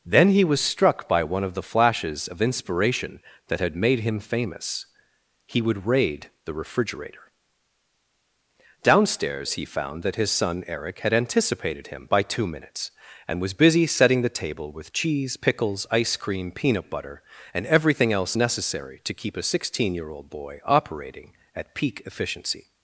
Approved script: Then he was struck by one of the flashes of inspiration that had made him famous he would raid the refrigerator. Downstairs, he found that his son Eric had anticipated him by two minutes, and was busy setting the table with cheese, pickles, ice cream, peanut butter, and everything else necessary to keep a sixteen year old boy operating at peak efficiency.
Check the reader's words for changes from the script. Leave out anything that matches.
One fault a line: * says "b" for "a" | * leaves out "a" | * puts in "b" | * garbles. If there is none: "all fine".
all fine